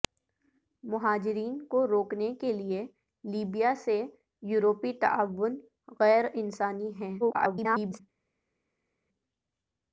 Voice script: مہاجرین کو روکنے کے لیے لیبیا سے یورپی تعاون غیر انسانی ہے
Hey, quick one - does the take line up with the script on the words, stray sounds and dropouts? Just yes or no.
no